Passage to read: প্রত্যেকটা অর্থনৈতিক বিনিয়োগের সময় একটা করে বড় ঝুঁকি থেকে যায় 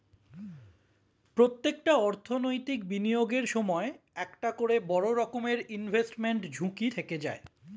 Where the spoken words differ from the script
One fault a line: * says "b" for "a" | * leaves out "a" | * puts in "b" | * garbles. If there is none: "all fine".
* puts in "রকমের ইনভেস্টমেন্ট"